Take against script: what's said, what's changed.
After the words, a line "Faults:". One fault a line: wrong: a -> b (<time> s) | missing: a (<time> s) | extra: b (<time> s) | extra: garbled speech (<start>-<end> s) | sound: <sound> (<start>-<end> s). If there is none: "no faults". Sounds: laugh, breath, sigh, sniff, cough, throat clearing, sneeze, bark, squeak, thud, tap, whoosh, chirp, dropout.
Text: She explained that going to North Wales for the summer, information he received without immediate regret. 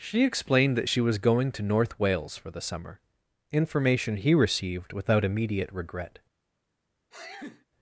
She explained that she was going to North Wales for the summer, information he received without immediate regret.
Faults:
extra: she was (0.9 s)
sound: sneeze (7.1-7.7 s)